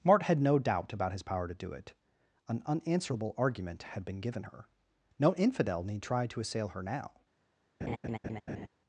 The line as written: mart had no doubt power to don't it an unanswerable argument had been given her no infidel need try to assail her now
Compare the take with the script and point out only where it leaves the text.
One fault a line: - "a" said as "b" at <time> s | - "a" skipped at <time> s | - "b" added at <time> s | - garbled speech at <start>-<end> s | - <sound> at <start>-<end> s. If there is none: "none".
- "about his" added at 0.9 s
- "don't" said as "do" at 1.5 s
- laugh at 7.8-8.7 s